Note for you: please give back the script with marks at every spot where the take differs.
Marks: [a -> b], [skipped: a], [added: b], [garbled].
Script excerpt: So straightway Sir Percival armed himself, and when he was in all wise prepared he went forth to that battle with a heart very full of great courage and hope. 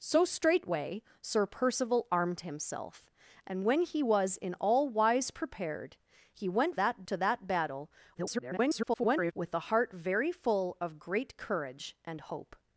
So straightway Sir Percival armed himself, and when he was in all wise prepared he went [forth -> that] to that battle [garbled] with a heart very full of great courage and hope.